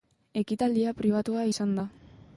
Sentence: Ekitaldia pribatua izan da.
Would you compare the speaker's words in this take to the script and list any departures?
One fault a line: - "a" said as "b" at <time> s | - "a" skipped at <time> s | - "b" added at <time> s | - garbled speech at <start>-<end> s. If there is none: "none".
none